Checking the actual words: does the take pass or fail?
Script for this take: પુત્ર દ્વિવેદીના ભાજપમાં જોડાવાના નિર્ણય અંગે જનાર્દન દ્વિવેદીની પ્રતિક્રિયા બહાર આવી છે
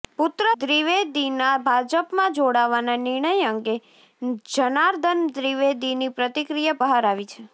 pass